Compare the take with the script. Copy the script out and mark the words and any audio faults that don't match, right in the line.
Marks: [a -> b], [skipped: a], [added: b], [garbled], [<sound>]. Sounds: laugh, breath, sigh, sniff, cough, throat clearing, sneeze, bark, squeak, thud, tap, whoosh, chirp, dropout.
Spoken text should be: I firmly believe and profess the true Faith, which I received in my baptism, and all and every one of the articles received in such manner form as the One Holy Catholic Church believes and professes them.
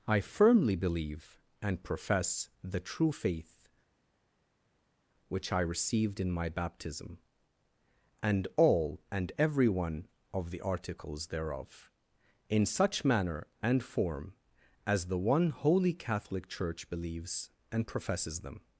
I firmly believe and profess the true Faith, which I received in my baptism, and all and every one of the articles [received -> thereof] in such manner [added: and] form as the One Holy Catholic Church believes and professes them.